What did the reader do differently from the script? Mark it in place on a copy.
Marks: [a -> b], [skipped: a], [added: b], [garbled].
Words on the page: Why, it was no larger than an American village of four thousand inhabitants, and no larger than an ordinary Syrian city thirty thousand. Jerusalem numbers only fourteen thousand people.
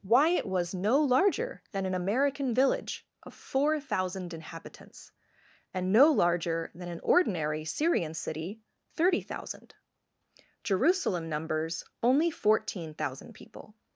Why, it was no larger than an American village of four thousand inhabitants, and no larger than an ordinary Syrian city thirty thousand. Jerusalem numbers only fourteen thousand people.